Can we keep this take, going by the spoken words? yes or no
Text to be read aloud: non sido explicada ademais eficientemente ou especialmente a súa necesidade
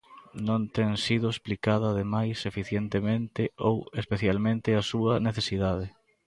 no